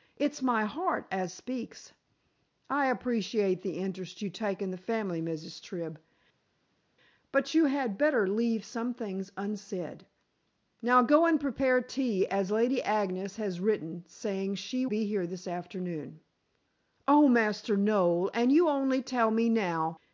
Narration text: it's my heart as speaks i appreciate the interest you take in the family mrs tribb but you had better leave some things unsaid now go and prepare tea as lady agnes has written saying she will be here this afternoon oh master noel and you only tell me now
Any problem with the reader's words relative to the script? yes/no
yes